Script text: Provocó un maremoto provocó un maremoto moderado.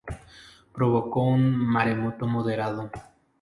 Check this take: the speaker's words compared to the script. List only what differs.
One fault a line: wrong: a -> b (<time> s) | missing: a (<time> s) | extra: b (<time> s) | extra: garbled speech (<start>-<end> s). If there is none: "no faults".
missing: provocó un maremoto (2.2 s)